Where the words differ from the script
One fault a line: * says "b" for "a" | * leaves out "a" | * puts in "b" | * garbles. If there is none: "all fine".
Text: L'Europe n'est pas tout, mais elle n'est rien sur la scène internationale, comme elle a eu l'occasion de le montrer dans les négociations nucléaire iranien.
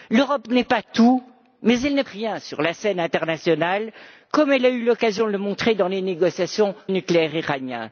all fine